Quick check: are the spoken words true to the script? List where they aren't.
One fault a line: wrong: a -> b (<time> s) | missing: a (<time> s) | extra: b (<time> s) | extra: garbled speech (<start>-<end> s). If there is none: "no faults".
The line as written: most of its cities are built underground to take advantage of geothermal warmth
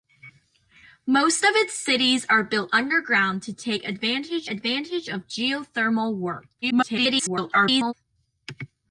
extra: advantage (4.5 s)
extra: garbled speech (6.6-7.9 s)